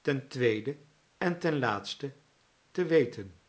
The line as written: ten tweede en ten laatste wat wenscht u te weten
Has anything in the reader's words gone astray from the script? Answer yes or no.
yes